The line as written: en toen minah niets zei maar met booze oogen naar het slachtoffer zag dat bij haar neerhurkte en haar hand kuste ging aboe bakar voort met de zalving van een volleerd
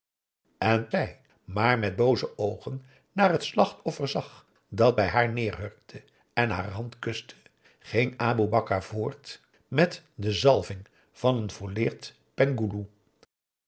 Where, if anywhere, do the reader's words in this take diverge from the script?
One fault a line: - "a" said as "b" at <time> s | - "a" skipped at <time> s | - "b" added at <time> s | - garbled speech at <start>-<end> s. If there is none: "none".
- "toen minah niets" skipped at 0.9 s